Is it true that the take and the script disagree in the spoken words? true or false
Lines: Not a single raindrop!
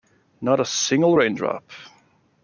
false